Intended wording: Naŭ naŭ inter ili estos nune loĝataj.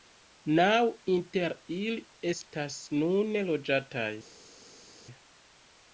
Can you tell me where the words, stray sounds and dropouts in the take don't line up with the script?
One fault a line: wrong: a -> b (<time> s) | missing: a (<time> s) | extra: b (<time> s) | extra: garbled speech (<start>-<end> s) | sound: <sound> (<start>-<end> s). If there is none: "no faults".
missing: naŭ (0.8 s)
wrong: estos -> estas (2.3 s)